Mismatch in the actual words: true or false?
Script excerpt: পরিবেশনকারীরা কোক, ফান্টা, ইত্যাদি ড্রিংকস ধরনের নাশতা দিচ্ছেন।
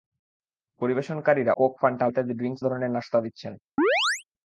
false